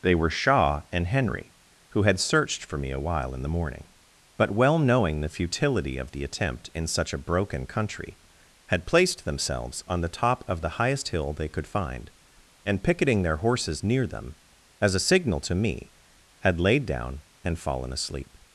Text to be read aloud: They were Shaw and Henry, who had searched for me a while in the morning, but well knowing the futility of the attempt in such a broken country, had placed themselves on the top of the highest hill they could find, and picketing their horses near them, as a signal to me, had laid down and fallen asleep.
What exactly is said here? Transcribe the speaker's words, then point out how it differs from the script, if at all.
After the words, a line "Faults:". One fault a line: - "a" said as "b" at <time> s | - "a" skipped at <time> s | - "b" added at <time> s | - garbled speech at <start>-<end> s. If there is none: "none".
They were Shaw and Henry, who had searched for me a while in the morning, but well knowing the futility of the attempt in such a broken country, had placed themselves on the top of the highest hill they could find, and picketing their horses near them, as a signal to me, had laid down and fallen asleep.
Faults:
none